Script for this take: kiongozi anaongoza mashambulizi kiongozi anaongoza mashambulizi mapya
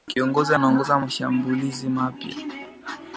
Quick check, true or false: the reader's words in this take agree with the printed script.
false